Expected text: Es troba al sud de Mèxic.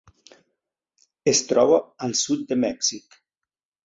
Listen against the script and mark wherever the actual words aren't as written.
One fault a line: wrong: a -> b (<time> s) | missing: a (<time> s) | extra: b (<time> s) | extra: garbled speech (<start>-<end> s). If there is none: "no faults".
no faults